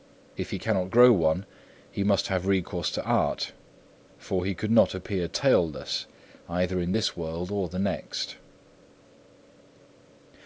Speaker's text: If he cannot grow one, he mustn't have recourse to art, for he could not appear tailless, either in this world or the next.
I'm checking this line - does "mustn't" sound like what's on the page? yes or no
no